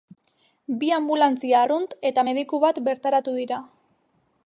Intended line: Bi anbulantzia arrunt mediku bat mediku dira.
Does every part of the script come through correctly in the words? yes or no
no